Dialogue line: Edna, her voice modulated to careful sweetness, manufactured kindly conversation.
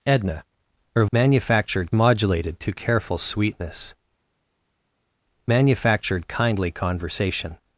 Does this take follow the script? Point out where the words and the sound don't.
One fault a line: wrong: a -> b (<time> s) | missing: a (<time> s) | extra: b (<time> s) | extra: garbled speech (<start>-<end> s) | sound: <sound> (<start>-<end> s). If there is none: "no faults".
wrong: voice -> manufactured (1.1 s)